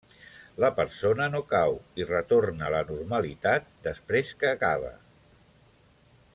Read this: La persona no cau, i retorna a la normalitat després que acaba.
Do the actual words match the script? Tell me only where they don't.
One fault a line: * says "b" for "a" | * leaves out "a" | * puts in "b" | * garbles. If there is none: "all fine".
all fine